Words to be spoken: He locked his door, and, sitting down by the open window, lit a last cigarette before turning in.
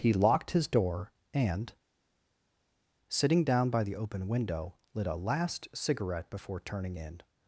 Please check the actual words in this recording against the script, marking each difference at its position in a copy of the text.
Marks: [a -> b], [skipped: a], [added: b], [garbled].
He locked his door, and, sitting down by the open window, lit a last cigarette before turning in.